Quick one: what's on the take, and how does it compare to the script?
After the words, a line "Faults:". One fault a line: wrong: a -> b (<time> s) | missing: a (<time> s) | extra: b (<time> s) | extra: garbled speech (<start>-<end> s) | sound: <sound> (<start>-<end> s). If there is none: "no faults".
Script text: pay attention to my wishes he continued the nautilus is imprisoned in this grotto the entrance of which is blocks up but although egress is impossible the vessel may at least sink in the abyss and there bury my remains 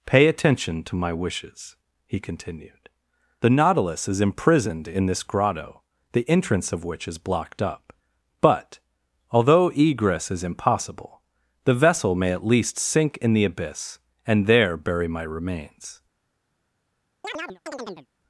pay attention to my wishes he continued the nautilus is imprisoned in this grotto the entrance of which is blocked up but although egress is impossible the vessel may at least sink in the abyss and there bury my remains
Faults:
wrong: blocks -> blocked (7.2 s)
sound: chirp (17.2-18.1 s)